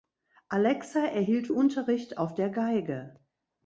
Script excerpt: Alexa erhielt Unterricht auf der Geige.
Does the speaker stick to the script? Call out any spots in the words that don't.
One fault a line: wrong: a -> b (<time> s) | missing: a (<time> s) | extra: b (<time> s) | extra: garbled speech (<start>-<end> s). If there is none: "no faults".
no faults